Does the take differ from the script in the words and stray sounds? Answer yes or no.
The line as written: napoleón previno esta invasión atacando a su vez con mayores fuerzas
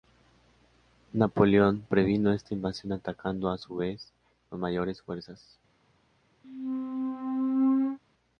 yes